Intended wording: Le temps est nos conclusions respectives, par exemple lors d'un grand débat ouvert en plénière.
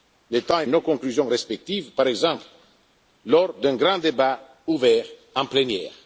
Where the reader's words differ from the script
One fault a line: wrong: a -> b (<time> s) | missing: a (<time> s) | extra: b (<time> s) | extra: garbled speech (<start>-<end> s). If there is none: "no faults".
no faults